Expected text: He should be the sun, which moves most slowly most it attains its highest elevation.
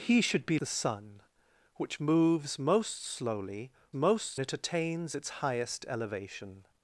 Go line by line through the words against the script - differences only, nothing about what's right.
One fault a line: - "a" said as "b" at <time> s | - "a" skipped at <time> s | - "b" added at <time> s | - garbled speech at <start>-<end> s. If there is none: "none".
none